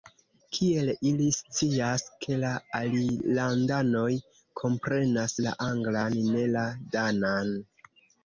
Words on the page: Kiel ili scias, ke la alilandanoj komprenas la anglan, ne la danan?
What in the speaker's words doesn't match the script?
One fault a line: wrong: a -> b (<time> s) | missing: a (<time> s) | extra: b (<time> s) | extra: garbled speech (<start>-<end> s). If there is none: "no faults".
no faults